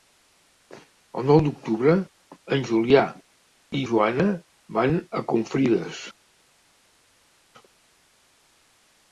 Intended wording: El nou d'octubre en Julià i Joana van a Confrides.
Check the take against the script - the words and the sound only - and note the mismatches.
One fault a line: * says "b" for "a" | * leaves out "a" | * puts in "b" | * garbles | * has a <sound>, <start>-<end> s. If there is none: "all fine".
all fine